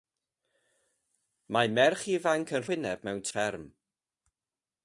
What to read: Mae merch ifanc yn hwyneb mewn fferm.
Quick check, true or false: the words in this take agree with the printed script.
true